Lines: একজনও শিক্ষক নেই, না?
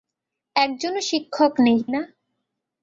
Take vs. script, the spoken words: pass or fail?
pass